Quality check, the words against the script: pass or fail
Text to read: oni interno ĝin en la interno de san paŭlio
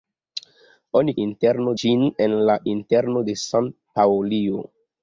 pass